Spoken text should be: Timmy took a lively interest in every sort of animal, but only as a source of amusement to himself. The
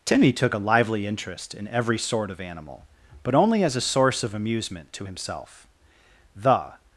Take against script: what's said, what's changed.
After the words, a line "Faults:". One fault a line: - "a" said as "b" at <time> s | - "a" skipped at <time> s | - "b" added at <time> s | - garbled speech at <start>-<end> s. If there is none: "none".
Timmy took a lively interest in every sort of animal, but only as a source of amusement to himself. The
Faults:
none